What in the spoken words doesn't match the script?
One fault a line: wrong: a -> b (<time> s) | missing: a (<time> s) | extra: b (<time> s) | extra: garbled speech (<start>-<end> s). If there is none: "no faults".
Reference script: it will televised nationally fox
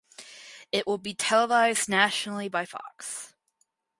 extra: be (1.0 s)
extra: by (2.5 s)